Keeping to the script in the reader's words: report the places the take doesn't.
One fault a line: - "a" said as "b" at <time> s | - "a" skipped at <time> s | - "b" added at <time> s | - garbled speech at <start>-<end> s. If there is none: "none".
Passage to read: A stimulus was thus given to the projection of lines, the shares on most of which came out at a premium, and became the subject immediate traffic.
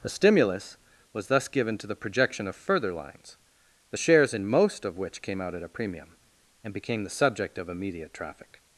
- "further" added at 2.5 s
- "on" said as "in" at 4.3 s
- "of" added at 7.6 s